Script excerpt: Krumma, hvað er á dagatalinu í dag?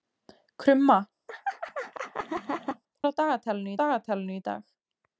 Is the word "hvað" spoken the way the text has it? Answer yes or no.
no